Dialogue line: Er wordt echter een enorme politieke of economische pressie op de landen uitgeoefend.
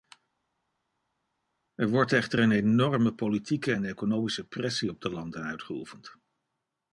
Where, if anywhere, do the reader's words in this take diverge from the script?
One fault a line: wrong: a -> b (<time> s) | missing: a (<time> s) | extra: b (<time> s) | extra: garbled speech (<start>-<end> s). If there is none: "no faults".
wrong: of -> en (3.7 s)